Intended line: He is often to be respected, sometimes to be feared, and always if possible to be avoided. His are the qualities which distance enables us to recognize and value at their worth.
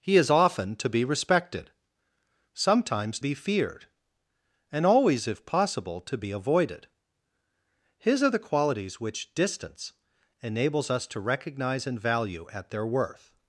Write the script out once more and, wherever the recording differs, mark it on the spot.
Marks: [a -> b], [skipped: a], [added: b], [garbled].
He is often to be respected, sometimes [skipped: to] be feared, and always if possible to be avoided. His are the qualities which distance enables us to recognize and value at their worth.